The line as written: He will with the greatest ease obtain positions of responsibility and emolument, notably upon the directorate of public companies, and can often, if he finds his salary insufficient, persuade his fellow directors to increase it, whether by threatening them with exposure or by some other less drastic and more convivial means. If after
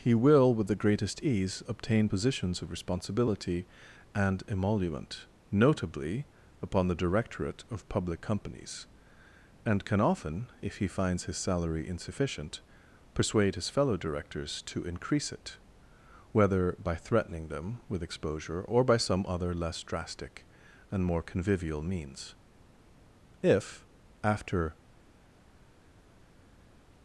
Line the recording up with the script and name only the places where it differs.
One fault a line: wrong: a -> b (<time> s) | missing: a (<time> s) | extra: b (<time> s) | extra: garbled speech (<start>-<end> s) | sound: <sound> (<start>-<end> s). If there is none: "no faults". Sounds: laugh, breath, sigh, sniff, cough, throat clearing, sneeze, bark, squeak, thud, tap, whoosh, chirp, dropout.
no faults